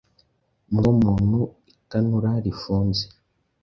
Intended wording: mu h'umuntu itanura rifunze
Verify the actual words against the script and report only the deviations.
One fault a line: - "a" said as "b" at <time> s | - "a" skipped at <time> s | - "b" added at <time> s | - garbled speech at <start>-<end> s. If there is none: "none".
none